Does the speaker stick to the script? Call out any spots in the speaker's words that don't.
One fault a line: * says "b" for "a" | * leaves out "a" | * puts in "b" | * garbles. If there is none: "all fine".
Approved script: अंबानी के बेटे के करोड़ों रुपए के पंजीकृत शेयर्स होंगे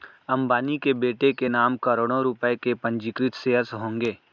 * puts in "नाम"